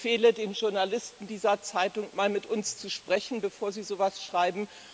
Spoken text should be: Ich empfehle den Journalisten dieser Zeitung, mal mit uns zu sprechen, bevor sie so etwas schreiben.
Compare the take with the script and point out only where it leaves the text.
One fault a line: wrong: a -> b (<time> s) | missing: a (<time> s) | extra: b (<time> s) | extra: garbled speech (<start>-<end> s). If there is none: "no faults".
no faults